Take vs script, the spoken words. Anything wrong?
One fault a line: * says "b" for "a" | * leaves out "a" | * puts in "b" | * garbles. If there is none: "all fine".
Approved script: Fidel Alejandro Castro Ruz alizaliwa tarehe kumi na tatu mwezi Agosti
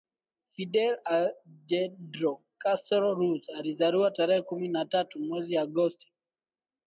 all fine